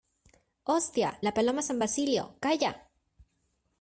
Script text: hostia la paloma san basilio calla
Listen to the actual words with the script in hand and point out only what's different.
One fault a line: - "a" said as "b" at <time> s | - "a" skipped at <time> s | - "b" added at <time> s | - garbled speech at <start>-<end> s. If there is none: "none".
none